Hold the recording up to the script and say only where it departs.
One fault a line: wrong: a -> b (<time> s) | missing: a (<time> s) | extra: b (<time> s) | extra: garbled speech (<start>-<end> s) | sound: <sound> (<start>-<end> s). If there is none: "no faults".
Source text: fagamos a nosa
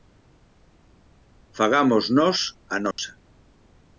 extra: nós (2.2 s)
sound: dropout (2.9-3.0 s)